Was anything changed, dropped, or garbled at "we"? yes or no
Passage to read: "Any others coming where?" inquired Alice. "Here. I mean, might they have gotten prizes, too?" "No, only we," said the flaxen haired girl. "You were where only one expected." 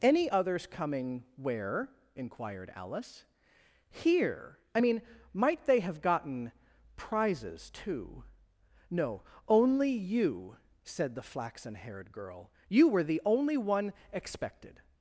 yes